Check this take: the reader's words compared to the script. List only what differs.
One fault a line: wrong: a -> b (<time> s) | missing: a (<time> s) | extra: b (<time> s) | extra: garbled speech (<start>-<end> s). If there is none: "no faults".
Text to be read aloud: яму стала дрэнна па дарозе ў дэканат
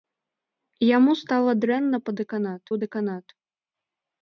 wrong: дарозе -> дэканат (2.2 s)